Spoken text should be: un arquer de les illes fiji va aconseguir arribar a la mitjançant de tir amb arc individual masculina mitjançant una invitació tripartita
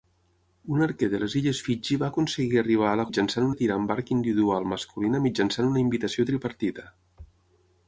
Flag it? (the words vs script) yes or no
no